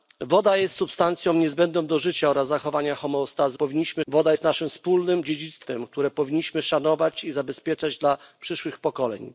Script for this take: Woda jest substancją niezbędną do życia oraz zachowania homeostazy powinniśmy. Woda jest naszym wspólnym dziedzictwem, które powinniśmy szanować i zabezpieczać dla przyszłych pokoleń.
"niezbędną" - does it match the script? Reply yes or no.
yes